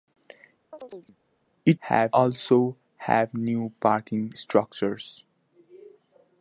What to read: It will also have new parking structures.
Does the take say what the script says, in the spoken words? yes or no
no